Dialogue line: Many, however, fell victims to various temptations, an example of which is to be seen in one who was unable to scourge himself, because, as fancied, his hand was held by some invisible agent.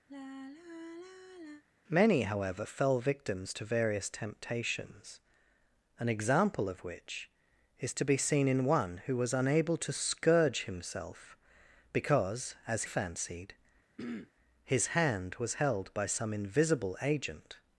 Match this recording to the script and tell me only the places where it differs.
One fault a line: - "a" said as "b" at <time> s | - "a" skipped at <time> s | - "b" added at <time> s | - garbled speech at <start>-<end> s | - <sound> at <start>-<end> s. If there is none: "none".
- sigh at 0.1-1.6 s
- throat clearing at 14.0-14.3 s